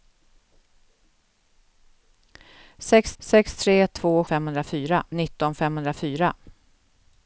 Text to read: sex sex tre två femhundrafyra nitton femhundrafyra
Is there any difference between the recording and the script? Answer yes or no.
no